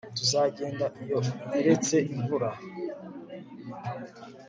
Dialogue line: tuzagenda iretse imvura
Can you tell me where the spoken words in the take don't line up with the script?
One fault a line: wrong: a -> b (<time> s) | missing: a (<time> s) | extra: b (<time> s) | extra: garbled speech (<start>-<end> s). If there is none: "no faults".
extra: iyo (1.0 s)